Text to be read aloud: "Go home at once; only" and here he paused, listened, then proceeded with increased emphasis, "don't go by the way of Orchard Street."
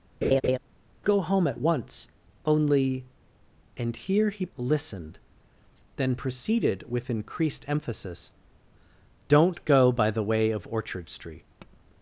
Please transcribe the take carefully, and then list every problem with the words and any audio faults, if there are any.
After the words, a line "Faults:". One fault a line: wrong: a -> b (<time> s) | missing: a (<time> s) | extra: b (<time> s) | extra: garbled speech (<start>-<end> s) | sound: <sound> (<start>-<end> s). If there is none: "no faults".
"Go home at once; only" and here he listened, then proceeded with increased emphasis, "don't go by the way of Orchard Street."
Faults:
sound: laugh (0.2-0.6 s)
missing: paused (4.5 s)
sound: tap (11.6-11.8 s)